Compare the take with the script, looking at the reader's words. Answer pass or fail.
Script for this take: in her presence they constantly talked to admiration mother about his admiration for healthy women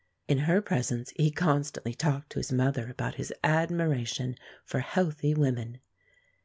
fail